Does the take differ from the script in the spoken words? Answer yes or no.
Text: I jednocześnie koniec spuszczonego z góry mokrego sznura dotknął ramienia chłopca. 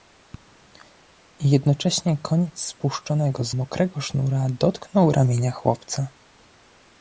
yes